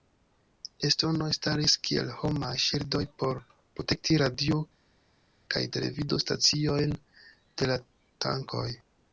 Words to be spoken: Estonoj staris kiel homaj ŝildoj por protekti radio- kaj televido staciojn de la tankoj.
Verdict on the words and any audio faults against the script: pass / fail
pass